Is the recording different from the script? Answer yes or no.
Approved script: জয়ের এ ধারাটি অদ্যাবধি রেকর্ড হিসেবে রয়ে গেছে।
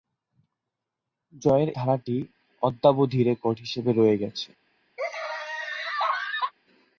yes